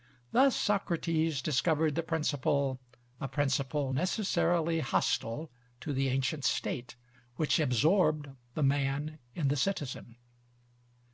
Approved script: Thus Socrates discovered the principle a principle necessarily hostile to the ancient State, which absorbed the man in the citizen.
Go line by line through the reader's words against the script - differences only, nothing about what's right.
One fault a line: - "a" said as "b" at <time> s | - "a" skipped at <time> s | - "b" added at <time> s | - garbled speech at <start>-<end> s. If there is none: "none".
none